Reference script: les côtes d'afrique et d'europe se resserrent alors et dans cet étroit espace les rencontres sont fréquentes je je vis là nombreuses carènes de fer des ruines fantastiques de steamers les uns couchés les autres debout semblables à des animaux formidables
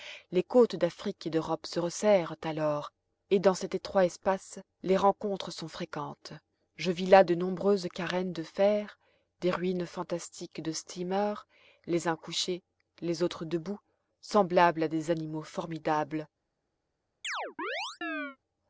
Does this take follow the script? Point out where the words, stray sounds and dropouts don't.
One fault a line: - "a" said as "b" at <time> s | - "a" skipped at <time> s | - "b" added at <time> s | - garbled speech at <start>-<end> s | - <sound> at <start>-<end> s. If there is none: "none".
- "je" skipped at 6.9 s
- "de" added at 7.2 s
- chirp at 17.2-18.4 s